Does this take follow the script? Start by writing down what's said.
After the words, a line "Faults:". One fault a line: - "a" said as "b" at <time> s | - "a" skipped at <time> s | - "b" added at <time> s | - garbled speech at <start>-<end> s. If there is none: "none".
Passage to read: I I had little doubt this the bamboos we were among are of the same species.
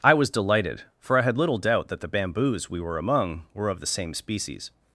I was delighted, for I had little doubt that the bamboos we were among were of the same species.
Faults:
- "was delighted for" added at 0.1 s
- "this" said as "that" at 1.9 s
- "are" said as "were" at 3.5 s